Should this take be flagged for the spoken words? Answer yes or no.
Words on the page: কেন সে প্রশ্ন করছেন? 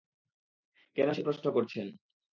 no